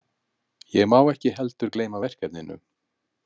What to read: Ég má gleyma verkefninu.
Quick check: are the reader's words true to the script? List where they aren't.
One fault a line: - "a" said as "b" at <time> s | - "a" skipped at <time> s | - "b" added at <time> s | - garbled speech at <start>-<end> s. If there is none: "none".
- "ekki heldur" added at 1.1 s